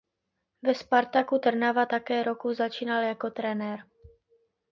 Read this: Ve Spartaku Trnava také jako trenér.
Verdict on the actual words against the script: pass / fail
fail